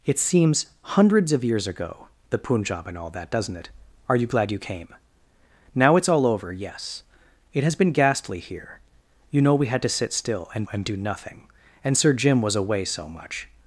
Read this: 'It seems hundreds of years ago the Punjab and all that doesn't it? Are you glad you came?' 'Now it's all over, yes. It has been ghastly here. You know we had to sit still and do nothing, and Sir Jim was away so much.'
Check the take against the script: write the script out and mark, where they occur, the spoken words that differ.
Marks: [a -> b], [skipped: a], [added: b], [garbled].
'It seems hundreds of years ago the Punjab and all that doesn't it? Are you glad you came?' 'Now it's all over, yes. It has been ghastly here. You know we had to sit still and [added: and] do nothing, and Sir Jim was away so much.'